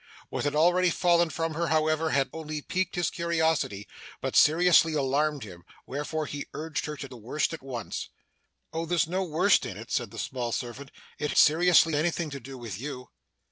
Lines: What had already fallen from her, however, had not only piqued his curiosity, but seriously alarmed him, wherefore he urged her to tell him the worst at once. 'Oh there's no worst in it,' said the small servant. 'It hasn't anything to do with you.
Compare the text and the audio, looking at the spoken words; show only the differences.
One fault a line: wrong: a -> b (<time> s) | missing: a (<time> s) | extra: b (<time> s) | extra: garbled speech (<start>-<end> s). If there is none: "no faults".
missing: not (2.3 s)
missing: tell him (7.1 s)
wrong: hasn't -> seriously (11.3 s)